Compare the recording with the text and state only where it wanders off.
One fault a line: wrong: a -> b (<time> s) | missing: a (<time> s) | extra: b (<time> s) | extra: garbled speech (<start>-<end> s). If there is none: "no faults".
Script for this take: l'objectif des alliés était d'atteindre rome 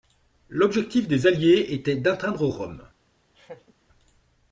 no faults